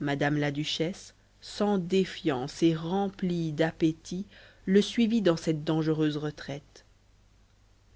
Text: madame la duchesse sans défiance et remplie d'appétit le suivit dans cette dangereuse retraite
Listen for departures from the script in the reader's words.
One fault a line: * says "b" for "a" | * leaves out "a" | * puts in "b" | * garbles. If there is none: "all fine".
all fine